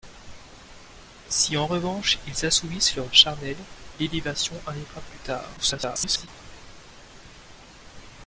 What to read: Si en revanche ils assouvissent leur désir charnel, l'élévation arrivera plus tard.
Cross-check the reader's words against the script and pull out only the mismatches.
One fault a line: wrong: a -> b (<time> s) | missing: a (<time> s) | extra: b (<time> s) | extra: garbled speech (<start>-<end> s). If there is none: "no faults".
missing: désir (3.0 s)
extra: garbled speech (5.6-6.3 s)